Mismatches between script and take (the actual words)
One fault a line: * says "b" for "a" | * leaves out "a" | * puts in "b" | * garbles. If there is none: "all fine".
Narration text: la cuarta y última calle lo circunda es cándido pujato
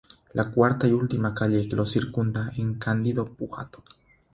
all fine